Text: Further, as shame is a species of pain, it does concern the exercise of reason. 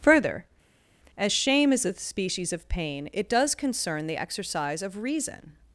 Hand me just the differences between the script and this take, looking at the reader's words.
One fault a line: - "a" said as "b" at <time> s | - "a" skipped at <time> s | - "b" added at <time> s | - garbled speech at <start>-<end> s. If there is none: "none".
none